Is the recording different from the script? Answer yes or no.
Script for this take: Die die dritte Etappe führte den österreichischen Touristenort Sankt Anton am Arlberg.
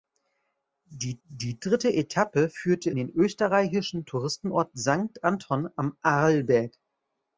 no